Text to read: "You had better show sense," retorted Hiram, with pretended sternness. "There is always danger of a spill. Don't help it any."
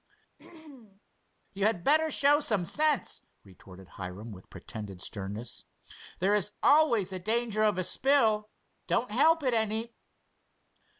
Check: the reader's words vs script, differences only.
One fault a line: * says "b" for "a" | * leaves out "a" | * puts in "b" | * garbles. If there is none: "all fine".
* puts in "some"